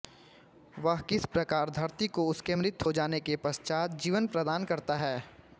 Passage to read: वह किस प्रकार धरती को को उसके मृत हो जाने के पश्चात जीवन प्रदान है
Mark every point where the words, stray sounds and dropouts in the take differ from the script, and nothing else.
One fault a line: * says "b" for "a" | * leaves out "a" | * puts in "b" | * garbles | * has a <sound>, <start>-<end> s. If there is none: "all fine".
* leaves out "को"
* puts in "करता"